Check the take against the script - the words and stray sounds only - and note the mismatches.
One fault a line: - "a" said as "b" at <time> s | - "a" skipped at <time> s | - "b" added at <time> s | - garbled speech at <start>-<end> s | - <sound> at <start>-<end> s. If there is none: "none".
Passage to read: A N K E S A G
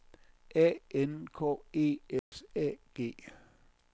- dropout at 2.2-2.3 s